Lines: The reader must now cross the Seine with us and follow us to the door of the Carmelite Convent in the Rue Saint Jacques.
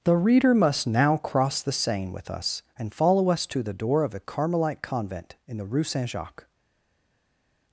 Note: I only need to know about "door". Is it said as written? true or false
true